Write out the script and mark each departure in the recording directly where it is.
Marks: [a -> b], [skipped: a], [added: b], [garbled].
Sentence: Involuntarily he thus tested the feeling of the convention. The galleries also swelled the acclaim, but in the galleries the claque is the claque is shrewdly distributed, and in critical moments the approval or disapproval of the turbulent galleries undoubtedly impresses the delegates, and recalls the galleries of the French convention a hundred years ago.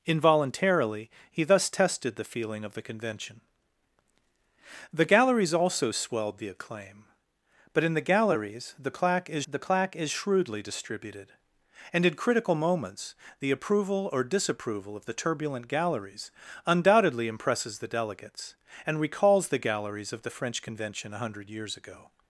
Involuntarily he thus tested the feeling of the convention. The galleries also swelled the acclaim, but in the galleries the claque is the claque is shrewdly distributed, and in critical moments the approval or disapproval of the turbulent galleries undoubtedly impresses the delegates, and recalls the galleries of the French convention a hundred years ago.